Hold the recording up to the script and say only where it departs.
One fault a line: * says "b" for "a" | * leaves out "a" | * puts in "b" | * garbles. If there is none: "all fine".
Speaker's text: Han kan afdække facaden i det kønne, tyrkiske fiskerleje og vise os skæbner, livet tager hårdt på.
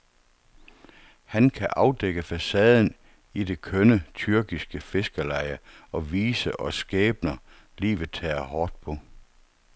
all fine